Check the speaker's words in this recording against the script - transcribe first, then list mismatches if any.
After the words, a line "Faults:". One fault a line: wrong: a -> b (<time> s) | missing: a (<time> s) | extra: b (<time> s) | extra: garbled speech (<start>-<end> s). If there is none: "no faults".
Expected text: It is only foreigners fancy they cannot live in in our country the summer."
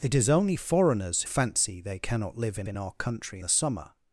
It is only foreigners fancy they cannot live in in our country the summer."
Faults:
no faults